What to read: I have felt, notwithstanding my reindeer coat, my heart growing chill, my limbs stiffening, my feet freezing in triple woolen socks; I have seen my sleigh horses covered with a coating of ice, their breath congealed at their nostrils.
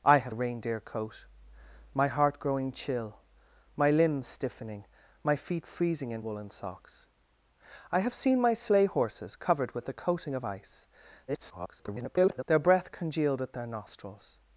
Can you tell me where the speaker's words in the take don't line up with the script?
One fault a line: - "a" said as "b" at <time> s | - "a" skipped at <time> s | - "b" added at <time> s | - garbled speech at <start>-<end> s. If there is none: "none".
- "felt notwithstanding my" skipped at 0.3 s
- "triple" skipped at 6.2 s
- garbled speech at 11.3-12.4 s